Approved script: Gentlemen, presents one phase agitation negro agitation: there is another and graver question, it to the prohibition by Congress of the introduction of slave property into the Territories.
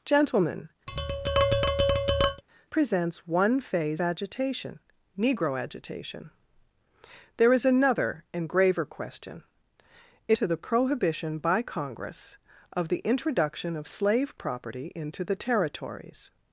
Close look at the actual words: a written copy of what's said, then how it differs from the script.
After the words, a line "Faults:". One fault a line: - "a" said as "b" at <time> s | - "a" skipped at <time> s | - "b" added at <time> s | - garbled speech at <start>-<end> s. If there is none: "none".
Gentlemen, presents one phase agitation negro agitation: there is another and graver question, it to the prohibition by Congress of the introduction of slave property into the Territories.
Faults:
none